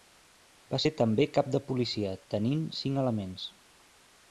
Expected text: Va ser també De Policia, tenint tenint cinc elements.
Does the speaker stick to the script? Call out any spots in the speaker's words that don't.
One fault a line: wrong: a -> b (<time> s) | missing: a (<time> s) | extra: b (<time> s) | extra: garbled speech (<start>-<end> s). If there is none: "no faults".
extra: Cap (1.4 s)
missing: tenint (2.6 s)